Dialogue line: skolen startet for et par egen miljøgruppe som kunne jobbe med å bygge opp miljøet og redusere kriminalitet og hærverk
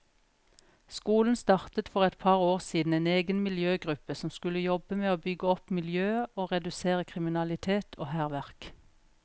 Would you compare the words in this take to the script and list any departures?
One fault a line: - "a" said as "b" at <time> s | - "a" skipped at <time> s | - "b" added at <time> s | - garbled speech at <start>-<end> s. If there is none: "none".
- "år siden en" added at 2.5 s
- "kunne" said as "skulle" at 4.3 s